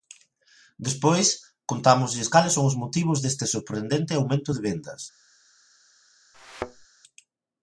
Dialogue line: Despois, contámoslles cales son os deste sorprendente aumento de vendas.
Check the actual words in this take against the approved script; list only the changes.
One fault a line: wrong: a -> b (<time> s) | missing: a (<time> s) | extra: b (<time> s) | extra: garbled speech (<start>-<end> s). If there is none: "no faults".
extra: motivos (2.8 s)